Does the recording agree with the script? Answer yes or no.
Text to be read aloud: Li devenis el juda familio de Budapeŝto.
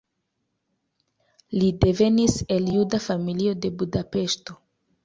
yes